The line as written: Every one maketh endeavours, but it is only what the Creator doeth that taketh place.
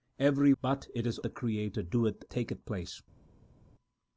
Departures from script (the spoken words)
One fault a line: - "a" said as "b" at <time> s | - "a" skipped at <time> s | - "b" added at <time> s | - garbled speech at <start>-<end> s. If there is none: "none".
- "one maketh endeavours" skipped at 0.5 s
- "only what" skipped at 1.2 s
- "that" skipped at 2.2 s